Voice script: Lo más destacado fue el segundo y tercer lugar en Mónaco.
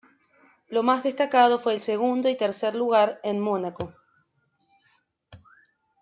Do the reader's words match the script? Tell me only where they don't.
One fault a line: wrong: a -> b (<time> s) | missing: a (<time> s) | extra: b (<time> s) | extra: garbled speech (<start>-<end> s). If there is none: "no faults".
no faults